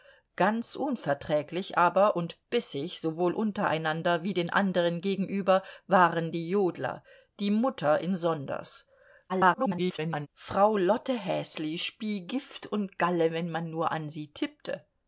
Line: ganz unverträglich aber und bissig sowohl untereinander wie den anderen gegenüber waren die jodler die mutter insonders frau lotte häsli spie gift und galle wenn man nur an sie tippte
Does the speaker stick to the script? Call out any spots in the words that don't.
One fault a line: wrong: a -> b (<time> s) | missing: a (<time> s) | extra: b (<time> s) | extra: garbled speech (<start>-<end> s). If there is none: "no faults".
extra: garbled speech (9.3-10.3 s)